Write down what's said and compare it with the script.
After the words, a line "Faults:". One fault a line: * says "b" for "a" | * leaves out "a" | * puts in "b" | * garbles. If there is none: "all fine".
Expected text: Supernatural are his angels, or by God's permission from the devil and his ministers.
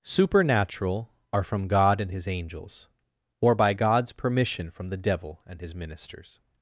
Supernatural are from God and his angels, or by God's permission from the devil and his ministers.
Faults:
* puts in "from God and"